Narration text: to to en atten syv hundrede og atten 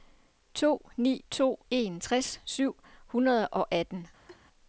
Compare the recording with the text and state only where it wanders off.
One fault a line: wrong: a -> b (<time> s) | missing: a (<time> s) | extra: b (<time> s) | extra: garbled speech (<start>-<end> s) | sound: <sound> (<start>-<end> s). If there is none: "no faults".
extra: ni (1.0 s)
wrong: atten -> tres (2.0 s)
sound: laugh (4.3-4.4 s)